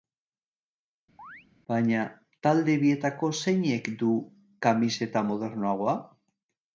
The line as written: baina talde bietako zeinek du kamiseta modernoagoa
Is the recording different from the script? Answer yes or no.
no